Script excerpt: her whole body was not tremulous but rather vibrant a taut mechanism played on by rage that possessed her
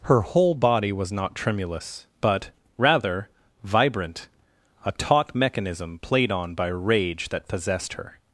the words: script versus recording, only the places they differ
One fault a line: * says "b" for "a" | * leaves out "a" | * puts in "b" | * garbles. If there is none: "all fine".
all fine